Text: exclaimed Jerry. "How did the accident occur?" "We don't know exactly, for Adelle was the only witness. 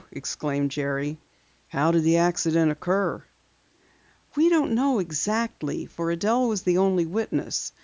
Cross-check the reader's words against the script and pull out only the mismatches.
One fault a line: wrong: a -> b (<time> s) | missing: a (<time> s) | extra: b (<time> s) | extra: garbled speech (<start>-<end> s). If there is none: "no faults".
no faults